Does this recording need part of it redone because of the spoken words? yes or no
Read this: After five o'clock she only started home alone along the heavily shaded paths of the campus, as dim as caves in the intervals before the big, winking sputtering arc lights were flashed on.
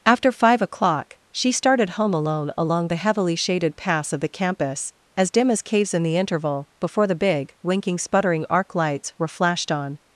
yes